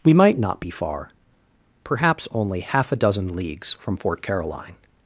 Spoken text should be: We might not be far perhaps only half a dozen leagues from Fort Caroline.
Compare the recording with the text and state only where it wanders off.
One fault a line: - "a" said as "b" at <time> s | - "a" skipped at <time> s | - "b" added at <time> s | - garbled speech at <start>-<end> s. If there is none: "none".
none